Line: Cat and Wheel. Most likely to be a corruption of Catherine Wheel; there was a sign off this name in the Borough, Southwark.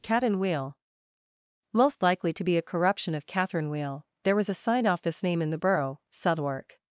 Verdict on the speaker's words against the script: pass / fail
pass